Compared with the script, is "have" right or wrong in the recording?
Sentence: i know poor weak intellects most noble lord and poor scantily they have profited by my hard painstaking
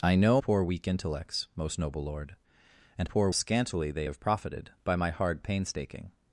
right